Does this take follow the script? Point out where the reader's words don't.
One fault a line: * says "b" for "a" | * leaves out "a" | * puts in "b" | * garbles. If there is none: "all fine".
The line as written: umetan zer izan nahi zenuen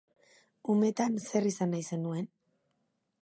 all fine